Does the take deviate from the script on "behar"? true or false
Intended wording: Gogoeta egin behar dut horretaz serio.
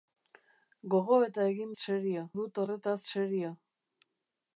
true